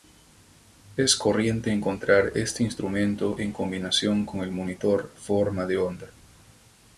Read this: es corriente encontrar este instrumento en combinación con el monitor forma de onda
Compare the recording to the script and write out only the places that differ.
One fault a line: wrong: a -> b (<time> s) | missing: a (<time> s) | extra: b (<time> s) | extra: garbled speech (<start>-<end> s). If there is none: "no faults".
no faults